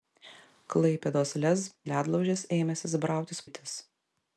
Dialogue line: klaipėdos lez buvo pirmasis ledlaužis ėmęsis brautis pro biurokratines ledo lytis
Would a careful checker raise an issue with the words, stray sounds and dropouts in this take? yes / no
yes